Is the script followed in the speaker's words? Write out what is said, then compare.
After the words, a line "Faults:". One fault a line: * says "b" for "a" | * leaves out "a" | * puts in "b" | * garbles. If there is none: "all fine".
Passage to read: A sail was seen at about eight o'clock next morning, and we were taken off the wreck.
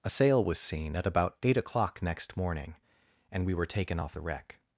A sail was seen at about eight o'clock next morning, and we were taken off the wreck.
Faults:
all fine